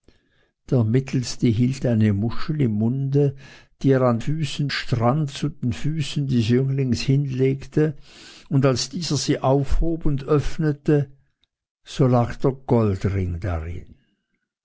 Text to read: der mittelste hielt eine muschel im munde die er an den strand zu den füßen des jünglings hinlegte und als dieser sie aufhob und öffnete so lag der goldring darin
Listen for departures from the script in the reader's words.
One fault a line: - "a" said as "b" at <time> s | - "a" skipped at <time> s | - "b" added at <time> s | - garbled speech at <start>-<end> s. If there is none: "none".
- "den" said as "füßen" at 4.2 s